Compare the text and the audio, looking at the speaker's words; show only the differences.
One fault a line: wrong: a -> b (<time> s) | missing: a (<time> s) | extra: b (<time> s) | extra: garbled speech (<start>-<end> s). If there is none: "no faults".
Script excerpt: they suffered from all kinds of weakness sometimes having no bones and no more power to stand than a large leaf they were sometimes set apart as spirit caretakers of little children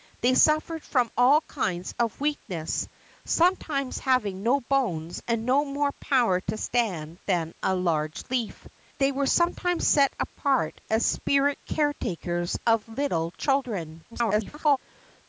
extra: garbled speech (14.1-14.8 s)